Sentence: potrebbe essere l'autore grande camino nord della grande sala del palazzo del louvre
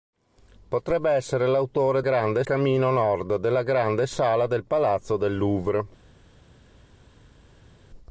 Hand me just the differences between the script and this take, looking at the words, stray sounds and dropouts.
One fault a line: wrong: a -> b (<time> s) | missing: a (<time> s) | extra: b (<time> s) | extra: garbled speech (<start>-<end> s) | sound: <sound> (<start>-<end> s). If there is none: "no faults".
no faults